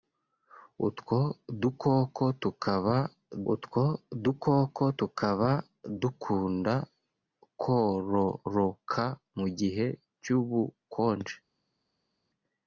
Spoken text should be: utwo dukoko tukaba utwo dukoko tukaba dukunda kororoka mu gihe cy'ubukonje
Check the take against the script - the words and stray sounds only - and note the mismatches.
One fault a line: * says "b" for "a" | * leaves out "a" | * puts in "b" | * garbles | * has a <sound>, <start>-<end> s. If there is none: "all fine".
all fine